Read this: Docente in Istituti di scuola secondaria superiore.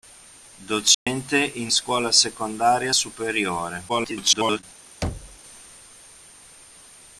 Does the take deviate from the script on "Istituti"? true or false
true